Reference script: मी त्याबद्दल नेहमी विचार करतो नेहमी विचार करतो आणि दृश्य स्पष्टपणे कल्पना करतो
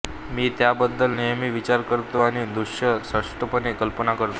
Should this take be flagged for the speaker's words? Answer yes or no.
yes